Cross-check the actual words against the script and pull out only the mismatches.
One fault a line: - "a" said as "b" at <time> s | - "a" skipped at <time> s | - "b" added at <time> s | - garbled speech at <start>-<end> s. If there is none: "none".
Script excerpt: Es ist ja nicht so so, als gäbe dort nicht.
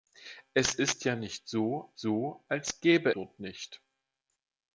none